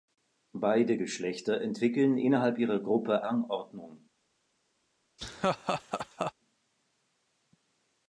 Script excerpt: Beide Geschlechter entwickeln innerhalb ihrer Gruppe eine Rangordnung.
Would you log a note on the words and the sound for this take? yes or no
yes